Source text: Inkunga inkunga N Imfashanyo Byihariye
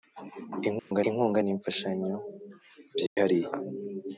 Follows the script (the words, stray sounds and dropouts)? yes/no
no